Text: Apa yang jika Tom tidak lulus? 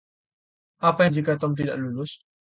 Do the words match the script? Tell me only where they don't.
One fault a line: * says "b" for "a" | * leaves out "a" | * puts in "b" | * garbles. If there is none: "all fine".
all fine